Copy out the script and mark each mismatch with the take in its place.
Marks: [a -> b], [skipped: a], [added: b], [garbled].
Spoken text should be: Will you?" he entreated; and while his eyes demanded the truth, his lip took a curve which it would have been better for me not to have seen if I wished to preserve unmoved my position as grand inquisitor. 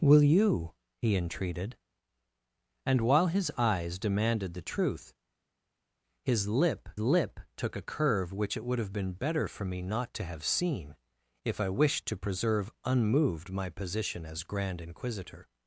Will you?" he entreated; and while his eyes demanded the truth, his lip [added: lip] took a curve which it would have been better for me not to have seen if I wished to preserve unmoved my position as grand inquisitor.